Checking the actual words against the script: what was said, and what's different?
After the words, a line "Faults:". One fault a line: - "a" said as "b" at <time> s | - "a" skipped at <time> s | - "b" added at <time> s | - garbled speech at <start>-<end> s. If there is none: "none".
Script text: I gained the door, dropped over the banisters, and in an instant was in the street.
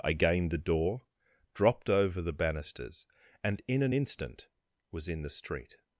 I gained the door, dropped over the banisters, and in an instant was in the street.
Faults:
none